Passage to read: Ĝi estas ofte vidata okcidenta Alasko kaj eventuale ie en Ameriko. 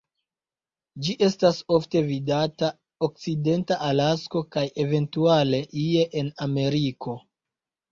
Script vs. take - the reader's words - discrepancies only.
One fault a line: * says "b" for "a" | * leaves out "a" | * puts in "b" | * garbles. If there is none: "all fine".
all fine